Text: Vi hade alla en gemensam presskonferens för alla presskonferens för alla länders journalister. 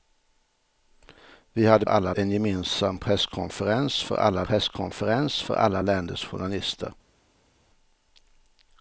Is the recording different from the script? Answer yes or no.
no